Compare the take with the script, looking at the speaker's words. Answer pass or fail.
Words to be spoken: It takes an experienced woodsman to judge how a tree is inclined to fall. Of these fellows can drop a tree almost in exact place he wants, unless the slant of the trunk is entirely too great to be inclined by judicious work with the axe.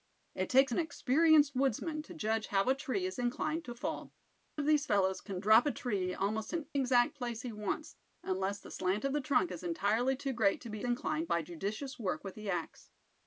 pass